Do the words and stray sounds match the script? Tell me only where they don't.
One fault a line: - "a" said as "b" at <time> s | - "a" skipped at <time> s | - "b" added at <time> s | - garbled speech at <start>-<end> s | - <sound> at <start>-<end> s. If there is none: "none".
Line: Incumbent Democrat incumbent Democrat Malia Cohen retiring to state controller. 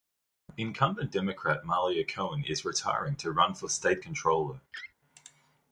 - "incumbent Democrat" skipped at 1.7 s
- "is" added at 2.4 s
- "run for" added at 3.3 s
- laugh at 4.7-4.9 s